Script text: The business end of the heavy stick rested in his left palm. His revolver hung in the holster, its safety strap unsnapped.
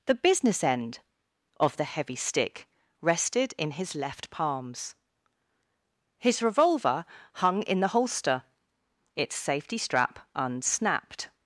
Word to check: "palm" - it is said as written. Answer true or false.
false